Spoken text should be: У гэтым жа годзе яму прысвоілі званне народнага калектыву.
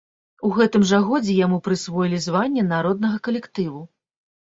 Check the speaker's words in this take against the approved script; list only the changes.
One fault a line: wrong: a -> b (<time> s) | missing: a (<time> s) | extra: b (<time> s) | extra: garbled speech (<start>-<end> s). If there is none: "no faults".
no faults